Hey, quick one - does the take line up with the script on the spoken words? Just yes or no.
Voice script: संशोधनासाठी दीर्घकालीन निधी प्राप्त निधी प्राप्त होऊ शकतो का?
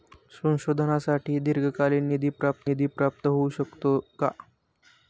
yes